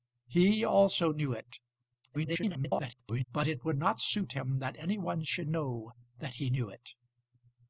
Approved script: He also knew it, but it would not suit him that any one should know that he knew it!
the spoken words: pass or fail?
fail